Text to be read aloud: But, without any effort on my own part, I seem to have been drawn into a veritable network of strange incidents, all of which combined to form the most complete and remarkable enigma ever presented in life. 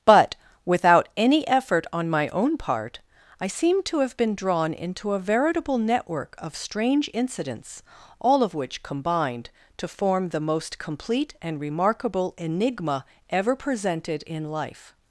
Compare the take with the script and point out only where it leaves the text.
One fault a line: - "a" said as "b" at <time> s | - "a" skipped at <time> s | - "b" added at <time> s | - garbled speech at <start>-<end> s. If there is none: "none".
none